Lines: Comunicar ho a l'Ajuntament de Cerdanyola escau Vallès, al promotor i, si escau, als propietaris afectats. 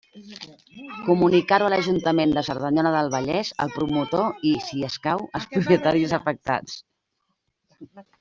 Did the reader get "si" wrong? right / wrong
right